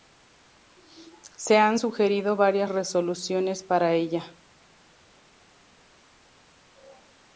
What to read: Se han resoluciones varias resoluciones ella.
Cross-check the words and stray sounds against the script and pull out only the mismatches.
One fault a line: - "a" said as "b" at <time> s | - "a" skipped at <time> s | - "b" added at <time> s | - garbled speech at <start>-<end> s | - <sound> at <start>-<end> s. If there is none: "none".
- "resoluciones" said as "sugerido" at 1.7 s
- "para" added at 3.6 s